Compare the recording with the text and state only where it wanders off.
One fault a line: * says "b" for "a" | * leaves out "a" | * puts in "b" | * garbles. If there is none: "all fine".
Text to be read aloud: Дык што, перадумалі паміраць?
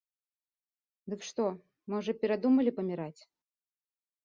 * puts in "можа"